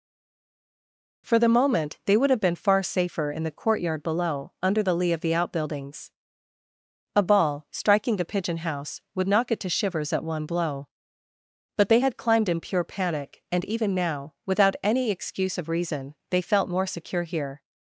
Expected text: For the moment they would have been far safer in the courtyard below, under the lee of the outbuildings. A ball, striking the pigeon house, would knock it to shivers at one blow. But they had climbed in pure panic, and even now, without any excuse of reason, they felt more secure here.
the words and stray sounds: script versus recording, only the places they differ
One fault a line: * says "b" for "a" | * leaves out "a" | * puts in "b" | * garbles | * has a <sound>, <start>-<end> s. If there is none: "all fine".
all fine